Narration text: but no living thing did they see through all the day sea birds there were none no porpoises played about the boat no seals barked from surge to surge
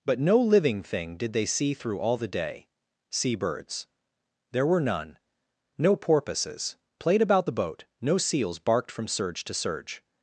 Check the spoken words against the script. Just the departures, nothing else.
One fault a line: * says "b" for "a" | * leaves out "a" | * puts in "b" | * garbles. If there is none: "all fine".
all fine